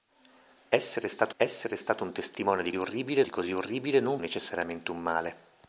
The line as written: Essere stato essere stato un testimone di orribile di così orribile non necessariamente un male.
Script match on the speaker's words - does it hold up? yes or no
yes